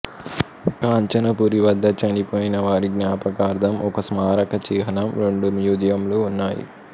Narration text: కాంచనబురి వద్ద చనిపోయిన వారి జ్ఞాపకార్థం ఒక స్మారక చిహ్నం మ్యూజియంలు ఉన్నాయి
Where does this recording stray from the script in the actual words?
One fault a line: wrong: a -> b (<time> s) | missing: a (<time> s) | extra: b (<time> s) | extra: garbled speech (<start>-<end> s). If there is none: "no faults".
extra: రెండు (5.2 s)